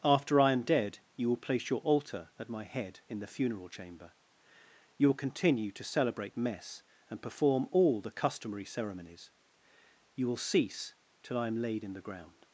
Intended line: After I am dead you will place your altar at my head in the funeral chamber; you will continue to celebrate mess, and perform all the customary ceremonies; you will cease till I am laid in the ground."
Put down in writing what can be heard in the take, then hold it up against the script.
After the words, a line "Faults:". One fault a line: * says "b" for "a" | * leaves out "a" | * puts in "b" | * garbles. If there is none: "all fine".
After I am dead you will place your altar at my head in the funeral chamber; you will continue to celebrate mess, and perform all the customary ceremonies; you will cease till I am laid in the ground."
Faults:
all fine